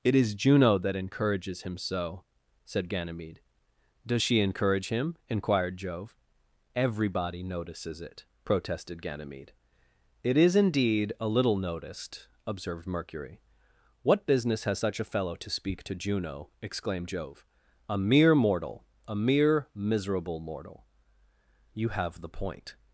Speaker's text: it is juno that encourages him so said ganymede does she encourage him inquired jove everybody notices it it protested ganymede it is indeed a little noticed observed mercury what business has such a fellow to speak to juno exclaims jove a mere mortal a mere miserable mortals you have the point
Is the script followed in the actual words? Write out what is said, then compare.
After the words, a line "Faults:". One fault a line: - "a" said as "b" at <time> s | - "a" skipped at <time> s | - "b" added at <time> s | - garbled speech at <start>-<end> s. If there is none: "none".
it is juno that encourages him so said ganymede does she encourage him inquired jove everybody notices it protested ganymede it is indeed a little noticed observed mercury what business has such a fellow to speak to juno exclaimed jove a mere mortal a mere miserable mortal you have the point
Faults:
- "it" skipped at 8.2 s
- "exclaims" said as "exclaimed" at 16.6 s
- "mortals" said as "mortal" at 20.4 s